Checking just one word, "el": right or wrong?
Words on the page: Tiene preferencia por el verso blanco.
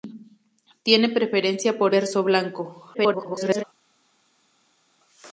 wrong